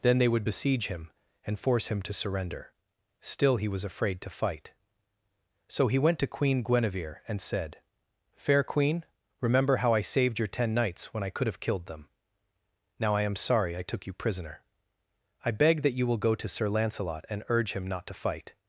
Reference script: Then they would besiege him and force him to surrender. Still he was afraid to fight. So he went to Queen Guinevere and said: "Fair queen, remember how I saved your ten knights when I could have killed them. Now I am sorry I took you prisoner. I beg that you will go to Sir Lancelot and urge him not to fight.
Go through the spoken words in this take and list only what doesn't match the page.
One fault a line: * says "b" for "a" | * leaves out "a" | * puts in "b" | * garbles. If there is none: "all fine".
all fine